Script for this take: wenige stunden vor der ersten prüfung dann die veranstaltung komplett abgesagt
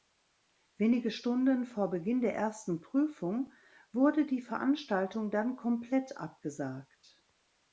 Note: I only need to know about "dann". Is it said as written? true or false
false